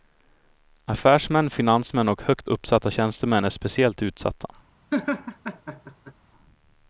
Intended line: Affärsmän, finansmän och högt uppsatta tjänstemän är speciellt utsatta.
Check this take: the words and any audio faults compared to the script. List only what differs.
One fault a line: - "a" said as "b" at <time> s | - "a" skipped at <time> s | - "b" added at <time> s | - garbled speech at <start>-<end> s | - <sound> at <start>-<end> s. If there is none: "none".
- laugh at 4.9-6.1 s